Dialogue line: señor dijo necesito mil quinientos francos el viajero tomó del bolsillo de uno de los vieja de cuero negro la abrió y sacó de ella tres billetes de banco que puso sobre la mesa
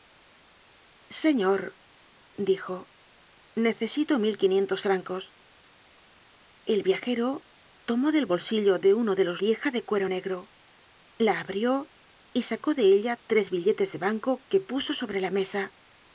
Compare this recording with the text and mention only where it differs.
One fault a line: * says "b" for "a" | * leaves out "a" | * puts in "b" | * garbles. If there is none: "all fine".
all fine